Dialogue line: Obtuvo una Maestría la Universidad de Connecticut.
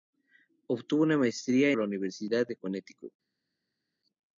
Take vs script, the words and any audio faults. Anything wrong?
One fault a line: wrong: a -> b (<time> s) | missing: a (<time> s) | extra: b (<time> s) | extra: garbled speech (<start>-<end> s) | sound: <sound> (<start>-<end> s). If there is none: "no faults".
no faults